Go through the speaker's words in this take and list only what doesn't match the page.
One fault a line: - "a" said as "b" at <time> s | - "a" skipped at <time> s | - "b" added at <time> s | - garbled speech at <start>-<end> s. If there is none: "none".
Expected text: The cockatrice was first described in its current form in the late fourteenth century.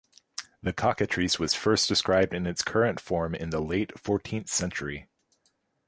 none